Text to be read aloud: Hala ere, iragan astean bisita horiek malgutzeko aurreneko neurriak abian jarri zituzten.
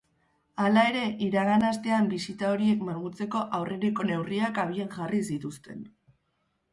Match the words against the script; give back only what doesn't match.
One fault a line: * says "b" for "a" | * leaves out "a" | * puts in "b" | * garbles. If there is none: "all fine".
all fine